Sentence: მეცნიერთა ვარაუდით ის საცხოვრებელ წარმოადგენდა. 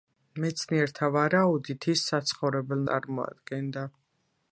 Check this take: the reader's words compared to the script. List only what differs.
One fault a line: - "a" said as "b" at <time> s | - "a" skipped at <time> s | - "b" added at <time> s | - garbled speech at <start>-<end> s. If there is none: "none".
none